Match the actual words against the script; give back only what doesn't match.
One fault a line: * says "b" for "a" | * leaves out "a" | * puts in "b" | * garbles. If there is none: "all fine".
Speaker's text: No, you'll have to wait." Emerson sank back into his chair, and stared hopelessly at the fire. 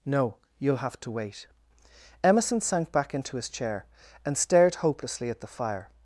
all fine